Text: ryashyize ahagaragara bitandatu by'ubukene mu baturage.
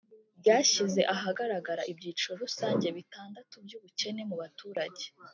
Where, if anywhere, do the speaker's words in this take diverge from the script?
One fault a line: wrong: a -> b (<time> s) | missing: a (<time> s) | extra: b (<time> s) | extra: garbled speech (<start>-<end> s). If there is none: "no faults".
extra: ibyiciro rusange (1.9 s)